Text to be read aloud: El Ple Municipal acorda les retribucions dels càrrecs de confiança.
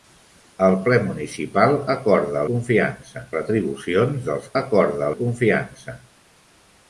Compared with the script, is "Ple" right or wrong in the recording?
right